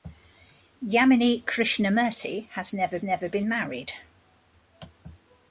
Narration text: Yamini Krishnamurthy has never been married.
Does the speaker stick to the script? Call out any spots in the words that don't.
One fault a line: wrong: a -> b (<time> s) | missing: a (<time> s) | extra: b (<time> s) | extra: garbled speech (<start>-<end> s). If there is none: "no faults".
extra: never (3.0 s)